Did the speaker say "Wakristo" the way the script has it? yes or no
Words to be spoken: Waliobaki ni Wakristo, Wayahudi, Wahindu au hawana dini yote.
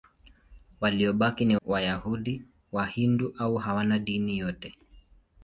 no